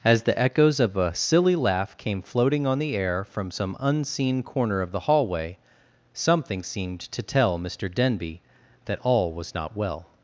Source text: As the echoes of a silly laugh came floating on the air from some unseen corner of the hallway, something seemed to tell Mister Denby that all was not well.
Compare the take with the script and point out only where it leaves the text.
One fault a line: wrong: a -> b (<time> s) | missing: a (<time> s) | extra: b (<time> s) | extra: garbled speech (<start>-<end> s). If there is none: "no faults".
no faults